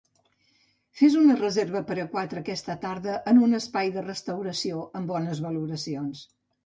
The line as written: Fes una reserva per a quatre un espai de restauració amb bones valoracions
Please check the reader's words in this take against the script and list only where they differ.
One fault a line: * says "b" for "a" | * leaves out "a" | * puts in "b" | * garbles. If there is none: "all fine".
* puts in "aquesta tarda en"